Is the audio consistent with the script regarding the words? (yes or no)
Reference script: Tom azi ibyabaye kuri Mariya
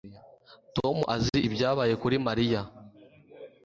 yes